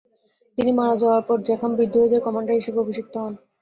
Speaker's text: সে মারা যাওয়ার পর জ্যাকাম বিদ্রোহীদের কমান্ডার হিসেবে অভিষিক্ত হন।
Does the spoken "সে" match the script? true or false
false